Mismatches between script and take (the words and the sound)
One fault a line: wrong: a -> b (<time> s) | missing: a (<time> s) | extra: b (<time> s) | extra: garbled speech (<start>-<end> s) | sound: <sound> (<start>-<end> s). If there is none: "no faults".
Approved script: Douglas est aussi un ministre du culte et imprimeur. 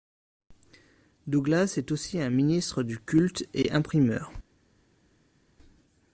no faults